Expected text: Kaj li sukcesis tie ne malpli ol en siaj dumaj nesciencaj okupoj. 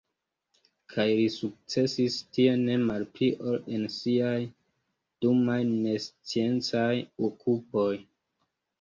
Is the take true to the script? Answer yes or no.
yes